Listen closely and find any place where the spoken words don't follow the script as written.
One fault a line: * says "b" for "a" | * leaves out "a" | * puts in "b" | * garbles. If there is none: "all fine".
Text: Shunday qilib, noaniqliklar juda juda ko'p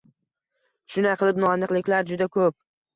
* leaves out "juda"